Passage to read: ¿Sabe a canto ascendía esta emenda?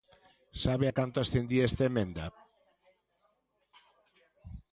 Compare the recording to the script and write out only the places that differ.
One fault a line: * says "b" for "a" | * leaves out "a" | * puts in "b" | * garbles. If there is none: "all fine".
all fine